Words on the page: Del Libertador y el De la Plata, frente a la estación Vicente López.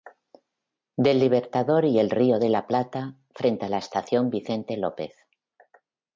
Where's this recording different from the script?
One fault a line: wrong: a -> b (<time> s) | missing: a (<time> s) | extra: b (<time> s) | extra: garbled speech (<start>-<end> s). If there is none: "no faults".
extra: Río (2.1 s)